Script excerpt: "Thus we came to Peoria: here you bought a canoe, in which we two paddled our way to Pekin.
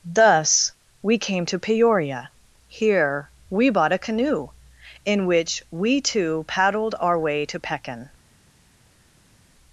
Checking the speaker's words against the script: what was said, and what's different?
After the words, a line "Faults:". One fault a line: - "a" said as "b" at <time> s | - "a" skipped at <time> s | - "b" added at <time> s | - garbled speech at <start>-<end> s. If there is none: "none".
"Thus we came to Peoria: here we bought a canoe, in which we two paddled our way to Pekin.
Faults:
- "you" said as "we" at 3.5 s